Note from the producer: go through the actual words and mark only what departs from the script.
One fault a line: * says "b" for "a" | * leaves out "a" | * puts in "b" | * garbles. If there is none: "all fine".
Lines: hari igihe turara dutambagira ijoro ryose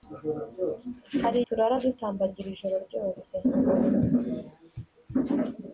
* leaves out "igihe"